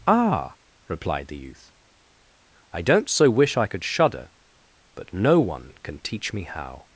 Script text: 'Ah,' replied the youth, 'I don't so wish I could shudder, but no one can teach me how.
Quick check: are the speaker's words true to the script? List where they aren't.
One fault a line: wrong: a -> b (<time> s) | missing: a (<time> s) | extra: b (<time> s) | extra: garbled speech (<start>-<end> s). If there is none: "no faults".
no faults